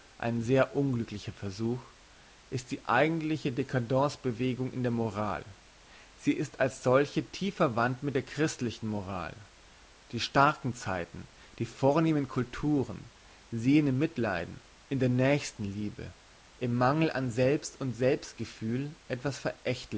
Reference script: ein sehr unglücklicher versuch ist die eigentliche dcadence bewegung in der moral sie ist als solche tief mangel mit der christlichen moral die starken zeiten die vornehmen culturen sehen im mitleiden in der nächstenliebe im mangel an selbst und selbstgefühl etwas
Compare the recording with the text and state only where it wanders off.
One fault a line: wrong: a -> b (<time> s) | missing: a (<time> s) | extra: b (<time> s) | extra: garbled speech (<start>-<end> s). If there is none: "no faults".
wrong: mangel -> verwandt (7.5 s)